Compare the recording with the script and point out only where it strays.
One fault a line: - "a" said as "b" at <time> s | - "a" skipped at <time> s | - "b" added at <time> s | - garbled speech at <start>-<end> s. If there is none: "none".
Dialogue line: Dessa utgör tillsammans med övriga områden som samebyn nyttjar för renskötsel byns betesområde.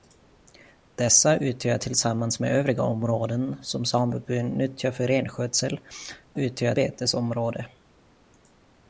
- "byns" said as "utgör" at 6.3 s